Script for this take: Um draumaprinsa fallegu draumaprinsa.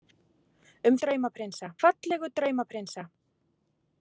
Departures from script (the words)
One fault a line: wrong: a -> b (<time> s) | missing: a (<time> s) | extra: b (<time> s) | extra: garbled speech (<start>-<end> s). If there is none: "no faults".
no faults